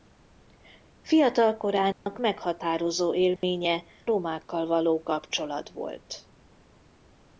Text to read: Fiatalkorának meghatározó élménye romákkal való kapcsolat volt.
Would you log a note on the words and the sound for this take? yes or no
yes